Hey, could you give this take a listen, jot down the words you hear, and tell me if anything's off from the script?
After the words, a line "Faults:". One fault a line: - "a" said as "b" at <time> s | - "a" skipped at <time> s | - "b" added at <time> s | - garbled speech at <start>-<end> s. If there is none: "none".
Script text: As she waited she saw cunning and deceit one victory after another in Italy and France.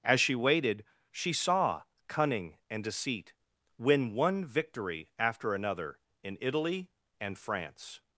As she waited she saw cunning and deceit win one victory after another in Italy and France.
Faults:
- "win" added at 3.8 s